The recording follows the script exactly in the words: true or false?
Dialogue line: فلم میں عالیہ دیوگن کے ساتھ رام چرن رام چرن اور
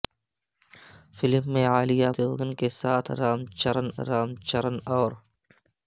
true